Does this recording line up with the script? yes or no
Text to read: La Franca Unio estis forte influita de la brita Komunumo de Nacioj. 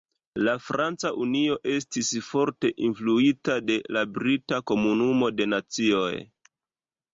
yes